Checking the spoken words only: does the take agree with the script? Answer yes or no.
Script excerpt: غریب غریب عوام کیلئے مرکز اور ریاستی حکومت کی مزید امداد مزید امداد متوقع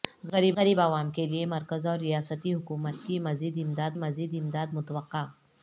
yes